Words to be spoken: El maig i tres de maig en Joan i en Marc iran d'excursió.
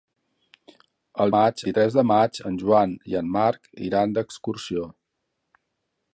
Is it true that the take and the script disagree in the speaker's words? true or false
false